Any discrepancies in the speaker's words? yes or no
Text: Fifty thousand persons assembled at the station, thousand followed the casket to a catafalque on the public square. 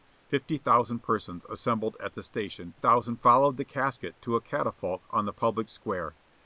no